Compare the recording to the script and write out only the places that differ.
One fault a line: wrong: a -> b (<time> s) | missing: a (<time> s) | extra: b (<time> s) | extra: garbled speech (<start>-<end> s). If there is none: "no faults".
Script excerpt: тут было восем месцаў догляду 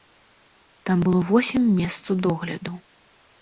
wrong: тут -> там (0.9 s)